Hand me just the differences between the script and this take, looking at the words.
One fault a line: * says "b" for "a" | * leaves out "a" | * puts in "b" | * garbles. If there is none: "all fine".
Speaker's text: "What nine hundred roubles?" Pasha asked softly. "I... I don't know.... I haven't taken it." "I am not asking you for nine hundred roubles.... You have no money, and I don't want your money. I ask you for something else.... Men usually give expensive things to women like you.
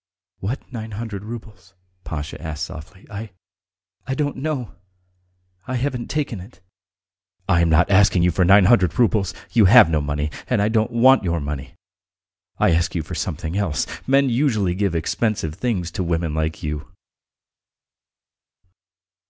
all fine